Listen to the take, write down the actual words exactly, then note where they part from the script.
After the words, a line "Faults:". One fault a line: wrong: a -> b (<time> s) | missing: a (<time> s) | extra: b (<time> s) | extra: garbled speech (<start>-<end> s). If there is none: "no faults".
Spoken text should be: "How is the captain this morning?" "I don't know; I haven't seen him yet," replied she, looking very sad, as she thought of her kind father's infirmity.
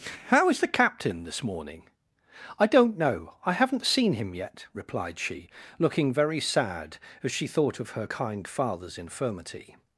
"How is the captain this morning?" "I don't know; I haven't seen him yet," replied she, looking very sad, as she thought of her kind father's infirmity.
Faults:
no faults